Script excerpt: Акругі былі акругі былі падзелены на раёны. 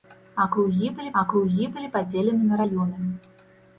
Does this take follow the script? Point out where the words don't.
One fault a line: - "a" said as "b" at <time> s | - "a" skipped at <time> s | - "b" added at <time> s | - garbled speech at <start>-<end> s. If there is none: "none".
none